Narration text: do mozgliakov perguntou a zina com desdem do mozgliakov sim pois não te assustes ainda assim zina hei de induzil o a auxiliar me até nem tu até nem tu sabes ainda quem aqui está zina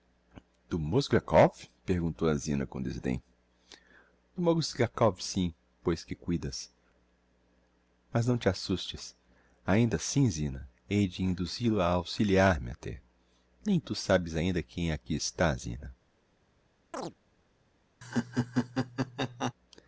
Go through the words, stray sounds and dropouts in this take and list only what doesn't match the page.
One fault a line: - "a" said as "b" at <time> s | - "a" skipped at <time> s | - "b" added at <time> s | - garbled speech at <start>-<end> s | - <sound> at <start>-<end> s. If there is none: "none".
- "que cuidas mas" added at 6.0 s
- "até nem tu" skipped at 13.9 s
- chirp at 16.9-17.1 s
- laugh at 18.0-19.5 s